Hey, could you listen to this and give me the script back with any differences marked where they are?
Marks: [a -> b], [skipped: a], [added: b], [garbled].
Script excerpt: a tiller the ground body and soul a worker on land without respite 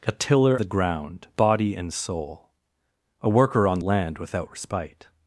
a tiller the ground body and soul a worker on land without respite